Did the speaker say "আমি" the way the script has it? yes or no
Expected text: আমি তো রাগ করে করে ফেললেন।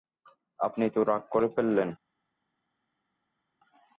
no